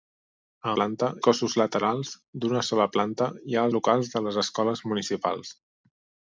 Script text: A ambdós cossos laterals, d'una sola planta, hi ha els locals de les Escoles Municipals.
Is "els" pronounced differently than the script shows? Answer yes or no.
yes